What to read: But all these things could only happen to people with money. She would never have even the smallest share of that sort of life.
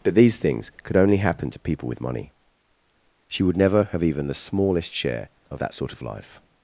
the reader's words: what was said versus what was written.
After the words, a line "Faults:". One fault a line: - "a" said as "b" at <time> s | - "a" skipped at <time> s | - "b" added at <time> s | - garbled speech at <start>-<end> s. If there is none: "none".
But these things could only happen to people with money. She would never have even the smallest share of that sort of life.
Faults:
- "all" skipped at 0.1 s